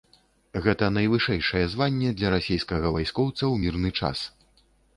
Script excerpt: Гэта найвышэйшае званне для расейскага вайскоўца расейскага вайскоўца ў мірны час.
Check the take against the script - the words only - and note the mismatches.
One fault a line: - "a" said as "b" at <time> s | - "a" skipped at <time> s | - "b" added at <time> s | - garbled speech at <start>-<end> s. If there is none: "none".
- "расейскага вайскоўца" skipped at 3.4 s